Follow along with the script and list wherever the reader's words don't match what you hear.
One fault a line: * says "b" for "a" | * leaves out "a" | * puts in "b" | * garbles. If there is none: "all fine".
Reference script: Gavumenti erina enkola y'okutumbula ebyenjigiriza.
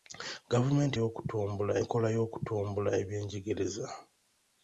* says "y'okutumbula" for "erina"